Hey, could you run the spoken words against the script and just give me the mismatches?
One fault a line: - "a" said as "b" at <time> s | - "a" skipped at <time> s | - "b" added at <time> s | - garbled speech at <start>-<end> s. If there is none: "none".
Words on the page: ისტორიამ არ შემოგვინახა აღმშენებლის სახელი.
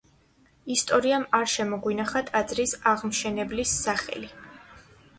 - "ტაძრის" added at 2.3 s